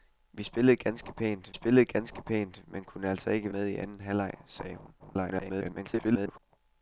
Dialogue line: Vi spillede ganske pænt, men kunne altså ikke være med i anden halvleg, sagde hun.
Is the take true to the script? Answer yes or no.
no